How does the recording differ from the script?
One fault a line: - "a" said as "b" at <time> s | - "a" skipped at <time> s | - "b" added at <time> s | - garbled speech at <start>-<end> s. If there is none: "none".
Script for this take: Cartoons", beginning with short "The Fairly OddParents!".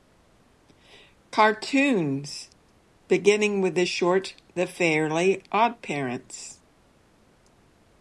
- "the" added at 3.8 s